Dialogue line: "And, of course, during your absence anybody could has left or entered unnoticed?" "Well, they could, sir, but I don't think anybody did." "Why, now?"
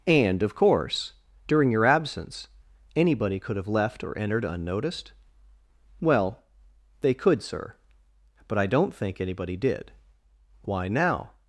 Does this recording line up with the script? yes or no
no